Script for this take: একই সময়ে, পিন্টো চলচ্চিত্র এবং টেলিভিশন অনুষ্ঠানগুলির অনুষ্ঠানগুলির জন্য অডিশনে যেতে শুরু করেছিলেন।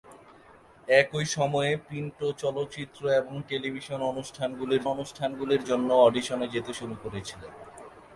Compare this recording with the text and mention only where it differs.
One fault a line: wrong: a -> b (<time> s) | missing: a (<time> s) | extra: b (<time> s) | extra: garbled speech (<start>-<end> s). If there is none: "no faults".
no faults